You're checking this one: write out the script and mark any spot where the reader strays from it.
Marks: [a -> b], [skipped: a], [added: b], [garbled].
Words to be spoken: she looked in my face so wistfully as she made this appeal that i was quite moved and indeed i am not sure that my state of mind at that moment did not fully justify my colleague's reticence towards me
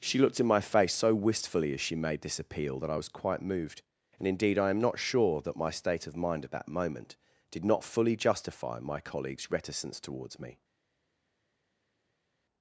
she looked in my face so wistfully as she made this appeal that i was quite moved and indeed i am not sure that my state of mind at that moment did not fully justify my colleague's reticence towards me